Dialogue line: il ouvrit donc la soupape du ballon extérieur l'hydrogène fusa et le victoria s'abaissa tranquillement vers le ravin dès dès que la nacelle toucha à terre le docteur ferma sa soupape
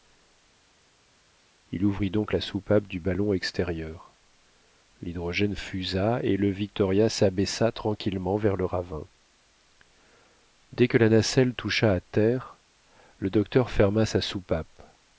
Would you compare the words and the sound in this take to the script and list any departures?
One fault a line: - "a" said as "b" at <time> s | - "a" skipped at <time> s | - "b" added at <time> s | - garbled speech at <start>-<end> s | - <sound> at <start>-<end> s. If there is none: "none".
- "dès" skipped at 10.9 s